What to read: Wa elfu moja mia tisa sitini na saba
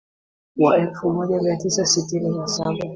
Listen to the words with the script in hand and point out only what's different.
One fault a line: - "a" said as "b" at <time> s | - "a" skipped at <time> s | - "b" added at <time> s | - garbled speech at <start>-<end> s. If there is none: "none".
none